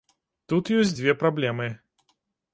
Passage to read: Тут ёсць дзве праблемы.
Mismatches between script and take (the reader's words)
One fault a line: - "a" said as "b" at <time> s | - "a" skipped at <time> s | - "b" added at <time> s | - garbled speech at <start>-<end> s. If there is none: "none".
none